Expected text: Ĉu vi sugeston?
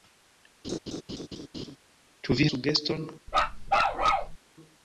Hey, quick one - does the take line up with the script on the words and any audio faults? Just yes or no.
no